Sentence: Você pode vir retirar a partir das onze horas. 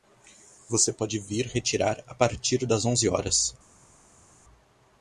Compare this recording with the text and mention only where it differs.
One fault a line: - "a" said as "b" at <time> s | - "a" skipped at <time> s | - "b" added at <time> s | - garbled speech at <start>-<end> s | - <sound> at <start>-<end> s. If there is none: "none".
none